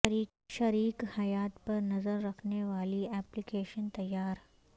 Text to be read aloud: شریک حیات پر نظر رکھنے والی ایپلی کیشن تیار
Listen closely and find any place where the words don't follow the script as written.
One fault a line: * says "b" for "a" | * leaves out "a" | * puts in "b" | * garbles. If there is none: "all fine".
all fine